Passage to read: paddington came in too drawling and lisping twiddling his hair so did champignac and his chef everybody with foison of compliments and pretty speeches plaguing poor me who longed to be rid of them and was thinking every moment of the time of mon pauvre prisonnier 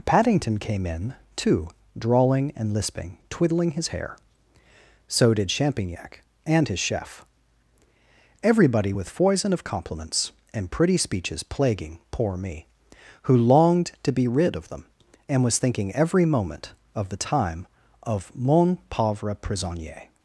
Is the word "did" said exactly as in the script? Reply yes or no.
yes